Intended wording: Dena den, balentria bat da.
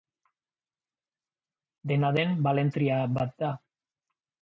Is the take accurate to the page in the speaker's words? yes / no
yes